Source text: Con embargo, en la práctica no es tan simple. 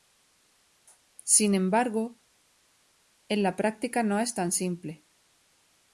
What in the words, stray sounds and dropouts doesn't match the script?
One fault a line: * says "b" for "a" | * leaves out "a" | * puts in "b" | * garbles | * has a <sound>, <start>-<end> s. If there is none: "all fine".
* says "Sin" for "Con"